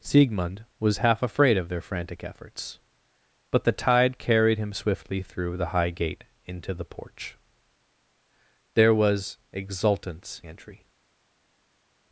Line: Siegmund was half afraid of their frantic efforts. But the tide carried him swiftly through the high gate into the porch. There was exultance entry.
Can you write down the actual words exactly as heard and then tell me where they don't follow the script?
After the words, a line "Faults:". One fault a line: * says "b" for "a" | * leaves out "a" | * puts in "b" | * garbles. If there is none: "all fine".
Siegmund was half afraid of their frantic efforts. But the tide carried him swiftly through the high gate into the porch. There was exultance entry.
Faults:
all fine